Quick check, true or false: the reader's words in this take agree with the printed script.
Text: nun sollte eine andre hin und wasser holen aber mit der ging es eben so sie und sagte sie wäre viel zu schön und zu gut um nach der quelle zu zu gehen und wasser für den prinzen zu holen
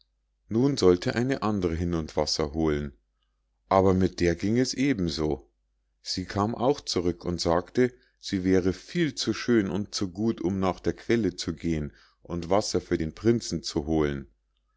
false